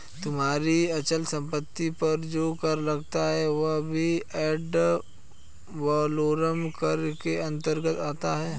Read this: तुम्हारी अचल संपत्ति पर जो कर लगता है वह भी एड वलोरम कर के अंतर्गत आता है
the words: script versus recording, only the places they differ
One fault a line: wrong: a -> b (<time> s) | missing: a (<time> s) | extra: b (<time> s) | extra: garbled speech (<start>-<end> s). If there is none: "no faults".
no faults